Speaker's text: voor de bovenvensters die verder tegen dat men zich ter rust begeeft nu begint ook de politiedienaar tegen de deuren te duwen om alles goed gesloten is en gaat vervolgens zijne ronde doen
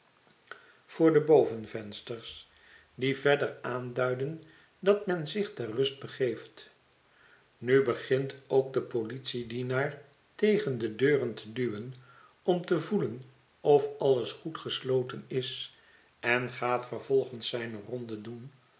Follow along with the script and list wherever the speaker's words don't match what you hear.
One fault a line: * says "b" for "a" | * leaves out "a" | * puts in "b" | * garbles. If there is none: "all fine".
* says "aanduiden" for "tegen"
* puts in "te voelen of"